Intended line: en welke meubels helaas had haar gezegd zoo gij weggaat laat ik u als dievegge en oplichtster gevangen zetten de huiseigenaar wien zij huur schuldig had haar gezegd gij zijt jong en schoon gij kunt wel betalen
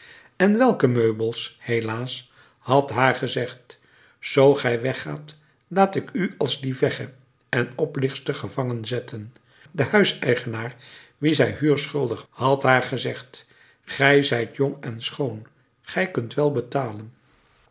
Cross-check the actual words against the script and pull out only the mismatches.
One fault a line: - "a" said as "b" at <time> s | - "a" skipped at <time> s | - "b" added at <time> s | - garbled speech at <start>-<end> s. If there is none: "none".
none